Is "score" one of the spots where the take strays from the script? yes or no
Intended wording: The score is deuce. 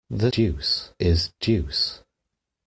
yes